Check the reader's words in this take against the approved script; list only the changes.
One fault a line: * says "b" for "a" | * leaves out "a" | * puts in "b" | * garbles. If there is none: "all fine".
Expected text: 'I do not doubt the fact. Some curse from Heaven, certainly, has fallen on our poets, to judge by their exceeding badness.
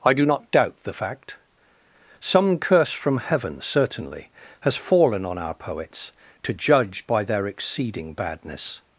all fine